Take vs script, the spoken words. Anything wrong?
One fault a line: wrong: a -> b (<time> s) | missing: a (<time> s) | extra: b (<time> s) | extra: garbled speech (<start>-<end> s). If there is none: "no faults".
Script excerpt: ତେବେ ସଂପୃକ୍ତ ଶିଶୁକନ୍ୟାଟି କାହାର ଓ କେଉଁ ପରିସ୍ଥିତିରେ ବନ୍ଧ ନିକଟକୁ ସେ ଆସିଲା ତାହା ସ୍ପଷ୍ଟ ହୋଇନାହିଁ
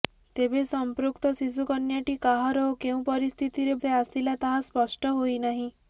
missing: ବନ୍ଧ ନିକଟକୁ (3.8 s)